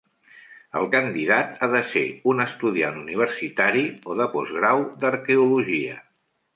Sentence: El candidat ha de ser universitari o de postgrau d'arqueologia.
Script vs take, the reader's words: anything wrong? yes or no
yes